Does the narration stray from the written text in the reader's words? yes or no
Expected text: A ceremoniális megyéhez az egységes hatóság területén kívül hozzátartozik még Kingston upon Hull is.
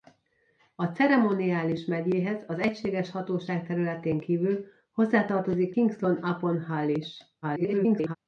yes